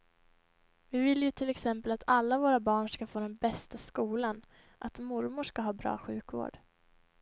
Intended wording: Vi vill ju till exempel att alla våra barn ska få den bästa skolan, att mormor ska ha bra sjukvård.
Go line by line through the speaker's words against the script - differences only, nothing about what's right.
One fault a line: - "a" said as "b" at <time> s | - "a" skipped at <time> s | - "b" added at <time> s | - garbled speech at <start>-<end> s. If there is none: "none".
none